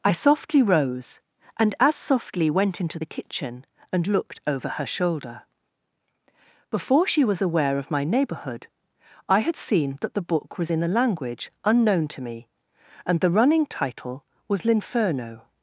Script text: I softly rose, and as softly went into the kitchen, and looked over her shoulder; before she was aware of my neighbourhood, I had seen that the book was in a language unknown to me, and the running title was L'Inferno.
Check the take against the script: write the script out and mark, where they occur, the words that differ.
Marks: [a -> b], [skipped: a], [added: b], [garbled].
I softly rose, and as softly went into the kitchen, and looked over her shoulder; before she was aware of my neighbourhood, I had seen that the book was in a language unknown to me, and the running title was L'Inferno.